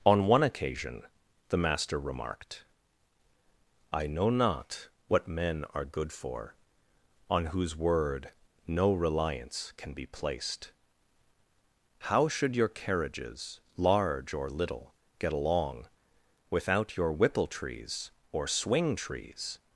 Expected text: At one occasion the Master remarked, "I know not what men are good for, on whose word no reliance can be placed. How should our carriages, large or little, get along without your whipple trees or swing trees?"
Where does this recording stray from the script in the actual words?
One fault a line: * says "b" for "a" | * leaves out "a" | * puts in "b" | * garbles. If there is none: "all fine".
* says "On" for "At"
* says "your" for "our"